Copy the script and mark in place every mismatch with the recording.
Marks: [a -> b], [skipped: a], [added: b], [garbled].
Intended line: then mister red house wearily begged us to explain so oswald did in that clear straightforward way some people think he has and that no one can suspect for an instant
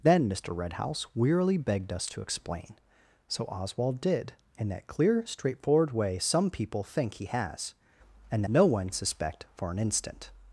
then mister red house wearily begged us to explain so oswald did in that clear straightforward way some people think he has and [skipped: that] no one [skipped: can] suspect for an instant